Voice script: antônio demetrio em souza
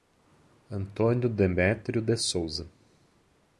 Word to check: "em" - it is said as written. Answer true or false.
false